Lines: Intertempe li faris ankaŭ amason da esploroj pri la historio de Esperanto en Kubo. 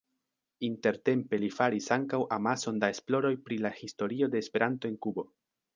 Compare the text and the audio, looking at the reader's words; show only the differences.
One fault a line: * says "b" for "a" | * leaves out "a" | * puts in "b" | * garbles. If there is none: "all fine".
all fine